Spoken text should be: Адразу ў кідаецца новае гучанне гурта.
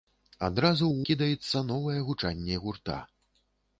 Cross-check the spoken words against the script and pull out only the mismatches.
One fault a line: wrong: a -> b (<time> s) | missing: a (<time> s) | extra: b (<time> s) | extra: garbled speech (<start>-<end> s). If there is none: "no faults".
no faults